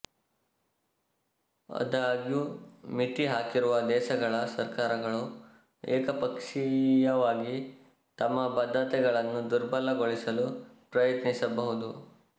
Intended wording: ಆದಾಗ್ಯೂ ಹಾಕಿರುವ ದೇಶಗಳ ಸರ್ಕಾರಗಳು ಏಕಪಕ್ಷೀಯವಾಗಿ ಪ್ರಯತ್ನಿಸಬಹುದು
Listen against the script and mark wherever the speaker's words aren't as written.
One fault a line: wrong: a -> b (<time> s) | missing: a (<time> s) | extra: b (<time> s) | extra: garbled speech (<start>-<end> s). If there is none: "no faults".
extra: ಮಿತಿ (2.9 s)
extra: ತಮ್ಮ ಬದ್ಧತೆಗಳನ್ನು ದುರ್ಬಲಗೊಳಿಸಲು (8.2 s)